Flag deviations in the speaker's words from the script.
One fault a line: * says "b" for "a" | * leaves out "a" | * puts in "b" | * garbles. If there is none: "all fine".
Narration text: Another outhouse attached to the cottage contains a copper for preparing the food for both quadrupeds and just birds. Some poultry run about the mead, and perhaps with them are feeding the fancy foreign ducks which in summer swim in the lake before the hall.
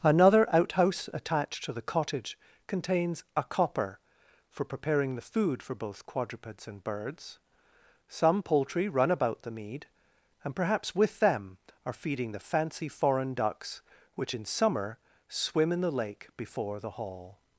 * leaves out "just"